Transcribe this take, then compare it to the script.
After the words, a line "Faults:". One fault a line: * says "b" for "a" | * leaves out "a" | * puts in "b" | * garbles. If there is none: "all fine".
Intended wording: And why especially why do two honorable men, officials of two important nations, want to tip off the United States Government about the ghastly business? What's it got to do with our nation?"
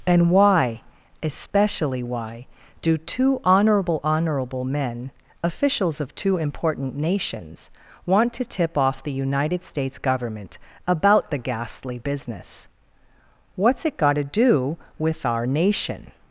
And why especially why do two honorable honorable men, officials of two important nations, want to tip off the United States Government about the ghastly business? What's it got to do with our nation?"
Faults:
* puts in "honorable"